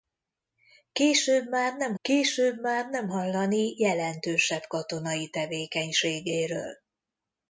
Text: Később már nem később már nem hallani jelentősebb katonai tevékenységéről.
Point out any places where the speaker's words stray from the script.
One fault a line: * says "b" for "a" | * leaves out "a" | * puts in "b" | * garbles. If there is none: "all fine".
all fine